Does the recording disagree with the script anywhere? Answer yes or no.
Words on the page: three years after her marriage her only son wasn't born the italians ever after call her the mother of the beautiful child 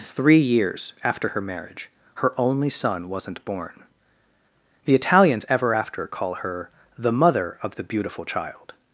no